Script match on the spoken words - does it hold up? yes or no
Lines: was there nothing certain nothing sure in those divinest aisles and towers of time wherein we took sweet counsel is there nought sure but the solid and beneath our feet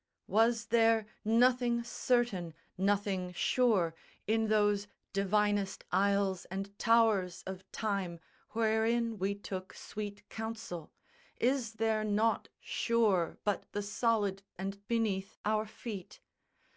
yes